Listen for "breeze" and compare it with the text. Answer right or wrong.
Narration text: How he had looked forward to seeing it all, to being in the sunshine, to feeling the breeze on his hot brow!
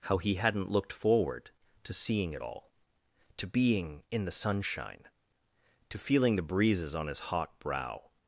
wrong